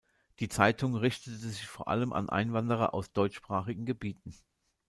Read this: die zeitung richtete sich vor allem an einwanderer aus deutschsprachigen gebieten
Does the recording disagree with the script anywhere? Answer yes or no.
no